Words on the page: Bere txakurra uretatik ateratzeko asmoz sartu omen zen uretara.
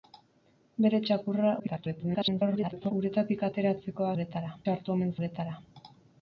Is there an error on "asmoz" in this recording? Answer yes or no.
yes